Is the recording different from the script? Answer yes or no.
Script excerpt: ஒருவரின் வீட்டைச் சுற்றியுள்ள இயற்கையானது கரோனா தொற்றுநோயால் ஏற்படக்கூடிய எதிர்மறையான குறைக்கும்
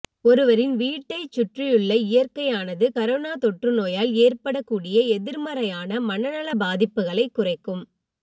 yes